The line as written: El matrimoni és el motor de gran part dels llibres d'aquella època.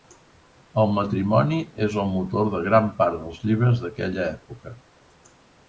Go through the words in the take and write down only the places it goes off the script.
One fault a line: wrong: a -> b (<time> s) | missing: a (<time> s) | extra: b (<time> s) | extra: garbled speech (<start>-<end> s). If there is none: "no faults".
no faults